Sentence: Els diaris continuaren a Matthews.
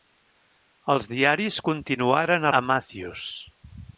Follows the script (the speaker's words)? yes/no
yes